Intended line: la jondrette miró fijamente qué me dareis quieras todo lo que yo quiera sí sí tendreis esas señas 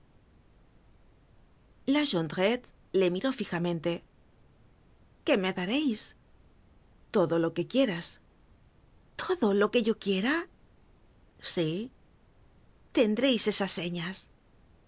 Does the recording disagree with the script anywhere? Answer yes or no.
yes